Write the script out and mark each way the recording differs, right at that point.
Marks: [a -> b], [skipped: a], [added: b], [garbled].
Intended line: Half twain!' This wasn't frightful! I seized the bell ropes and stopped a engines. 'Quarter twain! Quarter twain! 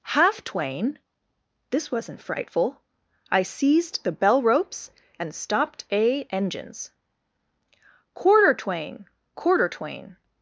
Half twain!' This wasn't frightful! I seized the bell ropes and stopped a engines. 'Quarter twain! Quarter twain!